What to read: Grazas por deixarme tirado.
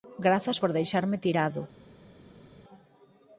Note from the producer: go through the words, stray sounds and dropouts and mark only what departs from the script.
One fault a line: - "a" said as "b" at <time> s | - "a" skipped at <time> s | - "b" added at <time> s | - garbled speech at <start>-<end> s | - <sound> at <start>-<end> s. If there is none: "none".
none